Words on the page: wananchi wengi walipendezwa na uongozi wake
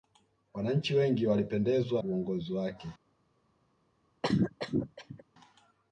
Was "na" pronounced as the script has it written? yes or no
no